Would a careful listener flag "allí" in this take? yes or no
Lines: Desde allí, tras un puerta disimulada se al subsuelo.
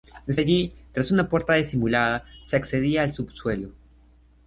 no